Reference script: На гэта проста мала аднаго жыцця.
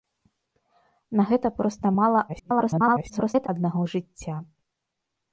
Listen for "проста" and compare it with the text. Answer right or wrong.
right